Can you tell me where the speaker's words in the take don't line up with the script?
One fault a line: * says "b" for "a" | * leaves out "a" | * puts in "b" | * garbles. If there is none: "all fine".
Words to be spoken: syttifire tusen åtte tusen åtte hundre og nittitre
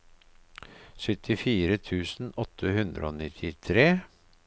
* leaves out "tusen åtte"